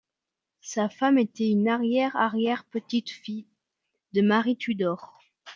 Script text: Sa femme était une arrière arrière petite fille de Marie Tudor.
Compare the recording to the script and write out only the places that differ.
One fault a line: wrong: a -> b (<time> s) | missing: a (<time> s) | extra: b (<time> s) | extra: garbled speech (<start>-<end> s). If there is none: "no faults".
no faults